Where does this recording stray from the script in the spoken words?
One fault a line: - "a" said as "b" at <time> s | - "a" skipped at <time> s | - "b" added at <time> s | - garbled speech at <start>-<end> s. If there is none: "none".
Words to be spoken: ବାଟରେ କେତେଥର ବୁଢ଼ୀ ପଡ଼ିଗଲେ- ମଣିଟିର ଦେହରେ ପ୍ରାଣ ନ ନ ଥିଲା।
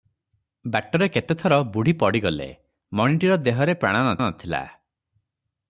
none